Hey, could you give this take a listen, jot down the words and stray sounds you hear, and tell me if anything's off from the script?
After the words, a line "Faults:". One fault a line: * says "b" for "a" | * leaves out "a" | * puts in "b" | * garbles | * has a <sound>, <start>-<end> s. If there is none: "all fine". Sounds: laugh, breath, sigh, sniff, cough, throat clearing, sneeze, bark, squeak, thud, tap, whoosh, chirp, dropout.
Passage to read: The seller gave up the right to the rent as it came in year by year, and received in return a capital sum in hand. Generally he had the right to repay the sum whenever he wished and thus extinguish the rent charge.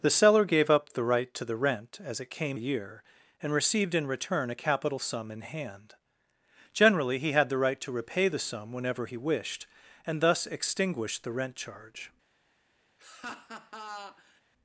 The seller gave up the right to the rent as it came year, and received in return a capital sum in hand. Generally he had the right to repay the sum whenever he wished and thus extinguish the rent charge.
Faults:
* leaves out "in year by"
* has a laugh, 13.0-14.4 s